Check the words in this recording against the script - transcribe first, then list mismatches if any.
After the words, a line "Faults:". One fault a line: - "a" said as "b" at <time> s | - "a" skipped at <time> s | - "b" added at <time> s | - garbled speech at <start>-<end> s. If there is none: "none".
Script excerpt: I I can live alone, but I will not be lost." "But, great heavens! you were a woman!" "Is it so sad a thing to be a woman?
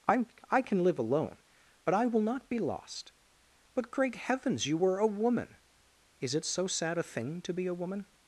I I can live alone, but I will not be lost." "But, great heavens! you were a woman!" "Is it so sad a thing to be a woman?
Faults:
none